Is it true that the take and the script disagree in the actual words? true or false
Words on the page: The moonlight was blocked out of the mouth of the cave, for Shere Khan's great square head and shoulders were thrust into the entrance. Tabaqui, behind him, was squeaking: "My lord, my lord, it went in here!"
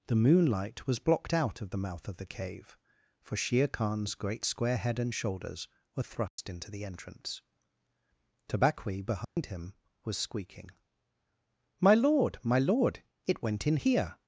false